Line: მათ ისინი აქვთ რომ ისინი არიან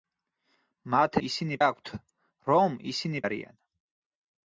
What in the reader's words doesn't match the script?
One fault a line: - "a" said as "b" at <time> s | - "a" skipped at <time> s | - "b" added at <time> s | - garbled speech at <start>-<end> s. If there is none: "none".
none